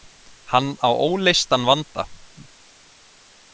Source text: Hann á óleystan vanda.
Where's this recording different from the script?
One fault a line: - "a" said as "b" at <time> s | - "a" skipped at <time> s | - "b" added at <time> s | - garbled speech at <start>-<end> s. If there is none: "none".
none